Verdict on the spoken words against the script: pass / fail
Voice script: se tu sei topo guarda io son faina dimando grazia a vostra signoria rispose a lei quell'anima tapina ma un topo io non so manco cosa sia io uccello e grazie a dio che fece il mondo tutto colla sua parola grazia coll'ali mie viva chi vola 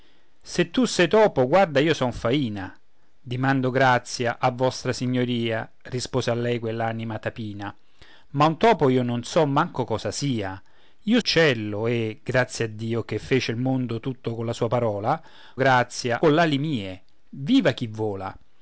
pass